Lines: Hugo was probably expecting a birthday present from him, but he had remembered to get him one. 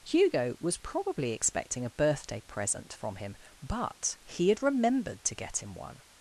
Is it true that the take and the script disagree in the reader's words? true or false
false